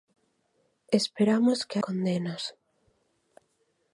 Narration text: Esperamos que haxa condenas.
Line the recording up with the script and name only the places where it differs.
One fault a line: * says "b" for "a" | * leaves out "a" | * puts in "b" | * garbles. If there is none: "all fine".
* leaves out "haxa"